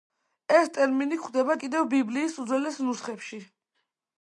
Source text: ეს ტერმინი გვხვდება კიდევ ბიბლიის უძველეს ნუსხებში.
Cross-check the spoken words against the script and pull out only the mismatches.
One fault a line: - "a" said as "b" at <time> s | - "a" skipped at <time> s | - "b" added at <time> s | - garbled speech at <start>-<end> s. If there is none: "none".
none